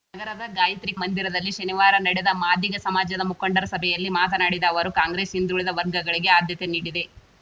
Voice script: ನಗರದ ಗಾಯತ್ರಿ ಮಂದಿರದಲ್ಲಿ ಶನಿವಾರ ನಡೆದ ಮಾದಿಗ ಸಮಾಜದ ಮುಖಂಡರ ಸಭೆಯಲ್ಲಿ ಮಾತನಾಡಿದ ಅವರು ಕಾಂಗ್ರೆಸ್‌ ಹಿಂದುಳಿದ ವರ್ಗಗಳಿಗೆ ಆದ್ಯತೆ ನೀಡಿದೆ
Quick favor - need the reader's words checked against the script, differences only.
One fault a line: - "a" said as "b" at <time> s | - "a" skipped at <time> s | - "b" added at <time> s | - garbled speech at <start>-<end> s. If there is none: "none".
none